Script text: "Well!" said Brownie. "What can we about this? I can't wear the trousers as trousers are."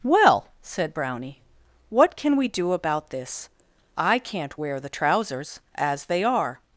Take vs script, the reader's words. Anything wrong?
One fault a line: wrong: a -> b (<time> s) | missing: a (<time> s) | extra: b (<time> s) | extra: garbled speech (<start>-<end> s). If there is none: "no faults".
extra: do (2.5 s)
wrong: trousers -> they (6.1 s)